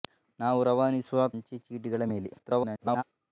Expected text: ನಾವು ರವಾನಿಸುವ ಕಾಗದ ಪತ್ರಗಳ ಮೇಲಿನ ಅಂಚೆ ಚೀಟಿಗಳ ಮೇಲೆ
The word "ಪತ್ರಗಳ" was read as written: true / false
false